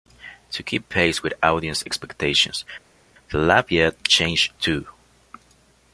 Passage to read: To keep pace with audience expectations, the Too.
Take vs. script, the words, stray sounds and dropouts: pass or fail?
fail